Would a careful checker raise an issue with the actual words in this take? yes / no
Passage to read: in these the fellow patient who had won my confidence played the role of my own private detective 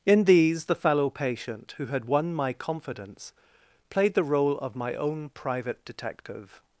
no